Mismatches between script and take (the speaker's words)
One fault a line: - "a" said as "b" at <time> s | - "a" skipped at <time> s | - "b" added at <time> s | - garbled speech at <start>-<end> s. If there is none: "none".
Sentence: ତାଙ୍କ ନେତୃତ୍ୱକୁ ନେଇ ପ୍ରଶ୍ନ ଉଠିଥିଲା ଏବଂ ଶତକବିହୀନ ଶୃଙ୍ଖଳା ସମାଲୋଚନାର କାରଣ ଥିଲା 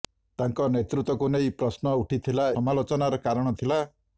- "ଏବଂ ଶତକବିହୀନ ଶୃଙ୍ଖଳା" skipped at 2.5 s